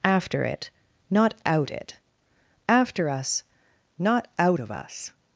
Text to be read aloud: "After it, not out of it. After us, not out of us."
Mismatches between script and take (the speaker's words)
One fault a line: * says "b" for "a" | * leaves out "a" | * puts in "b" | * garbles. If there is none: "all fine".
* leaves out "of"